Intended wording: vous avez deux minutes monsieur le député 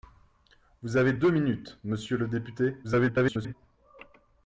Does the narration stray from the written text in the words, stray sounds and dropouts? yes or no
yes